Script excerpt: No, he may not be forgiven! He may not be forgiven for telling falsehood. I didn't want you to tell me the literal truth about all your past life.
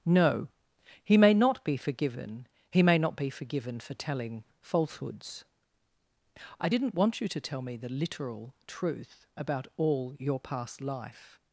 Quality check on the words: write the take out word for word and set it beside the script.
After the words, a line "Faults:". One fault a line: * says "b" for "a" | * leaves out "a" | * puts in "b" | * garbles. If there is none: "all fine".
No, he may not be forgiven! He may not be forgiven for telling falsehoods. I didn't want you to tell me the literal truth about all your past life.
Faults:
* says "falsehoods" for "falsehood"